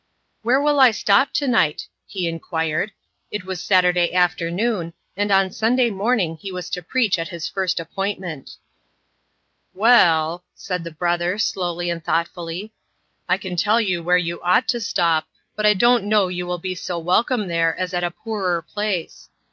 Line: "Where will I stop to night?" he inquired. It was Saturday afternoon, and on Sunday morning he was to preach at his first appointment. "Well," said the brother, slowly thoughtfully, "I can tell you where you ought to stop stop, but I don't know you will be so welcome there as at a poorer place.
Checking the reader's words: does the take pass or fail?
fail